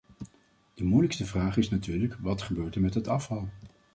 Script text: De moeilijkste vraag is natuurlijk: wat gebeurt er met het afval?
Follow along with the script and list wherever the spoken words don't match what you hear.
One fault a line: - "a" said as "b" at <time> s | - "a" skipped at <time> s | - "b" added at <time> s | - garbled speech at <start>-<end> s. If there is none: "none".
none